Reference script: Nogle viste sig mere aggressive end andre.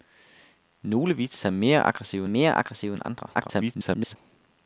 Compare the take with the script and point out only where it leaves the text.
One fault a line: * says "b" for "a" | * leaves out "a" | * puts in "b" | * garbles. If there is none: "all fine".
* puts in "mere aggressive"
* garbles